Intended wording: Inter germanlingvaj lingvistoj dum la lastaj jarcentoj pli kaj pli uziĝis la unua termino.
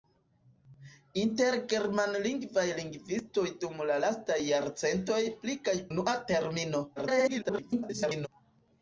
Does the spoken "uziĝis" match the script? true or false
false